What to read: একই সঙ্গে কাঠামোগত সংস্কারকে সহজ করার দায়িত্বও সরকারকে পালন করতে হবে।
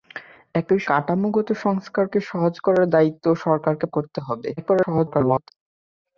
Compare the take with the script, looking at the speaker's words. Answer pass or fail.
fail